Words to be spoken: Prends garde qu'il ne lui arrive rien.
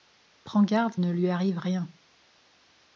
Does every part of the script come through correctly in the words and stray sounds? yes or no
no